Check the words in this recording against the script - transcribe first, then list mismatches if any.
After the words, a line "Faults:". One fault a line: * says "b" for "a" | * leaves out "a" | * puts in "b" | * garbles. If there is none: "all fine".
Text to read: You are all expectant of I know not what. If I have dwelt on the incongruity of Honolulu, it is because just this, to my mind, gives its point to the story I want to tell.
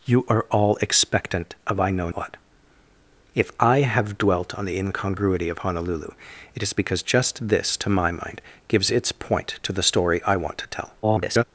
You are all expectant of I know what. If I have dwelt on the incongruity of Honolulu, it is because just this, to my mind, gives its point to the story I want to tell. [garbled]
Faults:
* leaves out "not"
* garbles